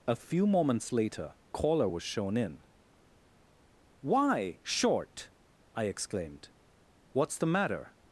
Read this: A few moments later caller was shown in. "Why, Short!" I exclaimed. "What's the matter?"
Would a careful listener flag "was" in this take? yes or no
no